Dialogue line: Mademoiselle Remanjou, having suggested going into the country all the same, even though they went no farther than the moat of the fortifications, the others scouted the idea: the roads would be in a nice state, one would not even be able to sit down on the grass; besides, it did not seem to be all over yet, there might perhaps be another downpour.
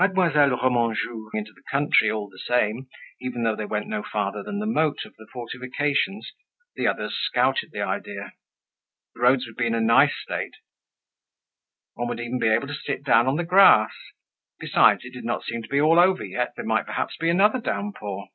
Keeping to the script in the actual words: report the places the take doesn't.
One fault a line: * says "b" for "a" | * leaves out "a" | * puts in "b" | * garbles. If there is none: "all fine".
* leaves out "having suggested going"
* leaves out "not"